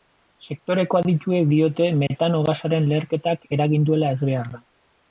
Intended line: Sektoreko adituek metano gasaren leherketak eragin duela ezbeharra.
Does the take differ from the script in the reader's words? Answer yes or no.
yes